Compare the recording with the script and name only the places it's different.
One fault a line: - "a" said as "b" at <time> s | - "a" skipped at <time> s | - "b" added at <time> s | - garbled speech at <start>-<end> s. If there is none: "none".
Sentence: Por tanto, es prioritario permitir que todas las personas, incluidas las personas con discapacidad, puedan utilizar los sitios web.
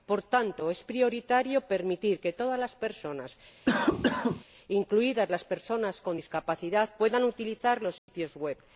none